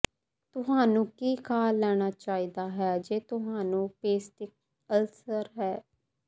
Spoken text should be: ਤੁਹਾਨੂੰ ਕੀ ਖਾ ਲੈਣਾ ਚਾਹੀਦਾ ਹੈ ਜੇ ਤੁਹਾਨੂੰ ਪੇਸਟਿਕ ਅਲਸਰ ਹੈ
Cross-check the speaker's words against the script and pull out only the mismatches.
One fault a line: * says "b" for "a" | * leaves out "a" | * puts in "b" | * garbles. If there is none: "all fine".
all fine